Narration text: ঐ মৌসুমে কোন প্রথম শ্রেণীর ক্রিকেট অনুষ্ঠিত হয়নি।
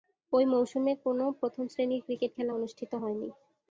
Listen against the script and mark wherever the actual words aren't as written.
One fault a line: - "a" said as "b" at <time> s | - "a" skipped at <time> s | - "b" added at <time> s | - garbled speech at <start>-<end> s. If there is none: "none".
- "খেলা" added at 2.3 s